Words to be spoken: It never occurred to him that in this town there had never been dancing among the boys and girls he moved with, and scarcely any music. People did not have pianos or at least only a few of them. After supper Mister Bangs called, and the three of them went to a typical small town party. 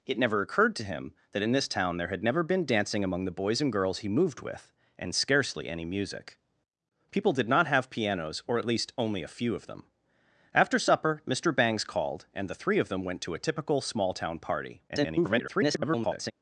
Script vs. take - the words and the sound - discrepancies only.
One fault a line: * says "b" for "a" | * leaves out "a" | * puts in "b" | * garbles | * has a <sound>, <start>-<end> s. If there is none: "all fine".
* garbles